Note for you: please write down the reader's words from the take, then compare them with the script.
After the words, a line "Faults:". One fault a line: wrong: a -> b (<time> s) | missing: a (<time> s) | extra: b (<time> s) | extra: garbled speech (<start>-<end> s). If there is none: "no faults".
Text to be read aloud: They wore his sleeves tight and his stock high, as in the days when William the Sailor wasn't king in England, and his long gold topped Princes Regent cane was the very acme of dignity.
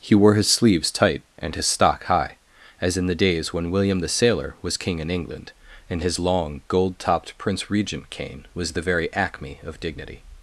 He wore his sleeves tight and his stock high, as in the days when William the Sailor was king in England, and his long gold topped Prince Regent cane was the very acme of dignity.
Faults:
wrong: They -> He (0.0 s)
wrong: wasn't -> was (4.6 s)
wrong: Princes -> Prince (7.4 s)